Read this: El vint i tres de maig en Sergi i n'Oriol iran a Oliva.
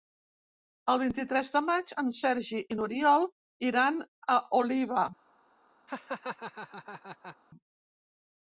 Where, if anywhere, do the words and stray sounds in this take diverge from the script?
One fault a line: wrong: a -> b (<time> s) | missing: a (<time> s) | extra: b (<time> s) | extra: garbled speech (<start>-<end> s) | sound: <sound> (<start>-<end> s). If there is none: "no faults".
sound: laugh (5.9-7.4 s)